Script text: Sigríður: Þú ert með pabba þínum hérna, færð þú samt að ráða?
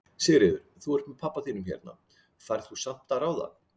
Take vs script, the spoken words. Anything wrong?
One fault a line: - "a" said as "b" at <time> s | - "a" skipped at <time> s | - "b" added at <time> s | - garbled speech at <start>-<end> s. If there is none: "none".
none